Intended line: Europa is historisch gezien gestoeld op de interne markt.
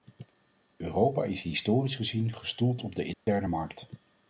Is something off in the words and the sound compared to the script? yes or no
yes